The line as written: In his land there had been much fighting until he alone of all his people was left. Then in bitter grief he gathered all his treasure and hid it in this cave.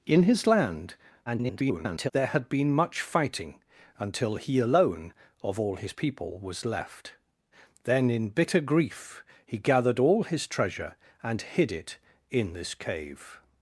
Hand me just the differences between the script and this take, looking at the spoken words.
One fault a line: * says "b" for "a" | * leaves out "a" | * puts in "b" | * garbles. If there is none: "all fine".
* garbles